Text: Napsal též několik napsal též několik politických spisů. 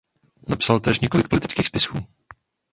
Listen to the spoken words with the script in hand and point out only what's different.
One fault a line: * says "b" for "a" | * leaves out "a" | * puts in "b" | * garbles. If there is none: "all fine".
* leaves out "napsal též několik"